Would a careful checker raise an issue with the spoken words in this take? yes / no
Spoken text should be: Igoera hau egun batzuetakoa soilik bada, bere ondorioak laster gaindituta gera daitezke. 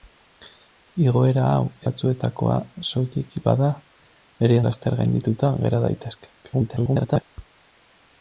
yes